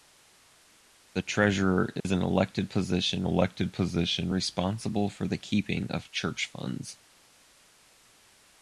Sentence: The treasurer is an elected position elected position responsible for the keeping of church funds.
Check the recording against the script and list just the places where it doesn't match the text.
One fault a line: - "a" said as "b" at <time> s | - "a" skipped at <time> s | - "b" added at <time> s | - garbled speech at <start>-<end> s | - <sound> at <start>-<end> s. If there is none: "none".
- dropout at 2.0-2.0 s